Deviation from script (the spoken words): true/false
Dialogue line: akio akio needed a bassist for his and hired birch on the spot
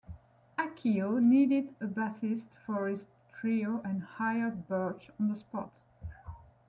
true